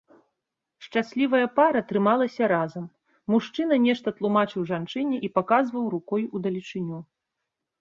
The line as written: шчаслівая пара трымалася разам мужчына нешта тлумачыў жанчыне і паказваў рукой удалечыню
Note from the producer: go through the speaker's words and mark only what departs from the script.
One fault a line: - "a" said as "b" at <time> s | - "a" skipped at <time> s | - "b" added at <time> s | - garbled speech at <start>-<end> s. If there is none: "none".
none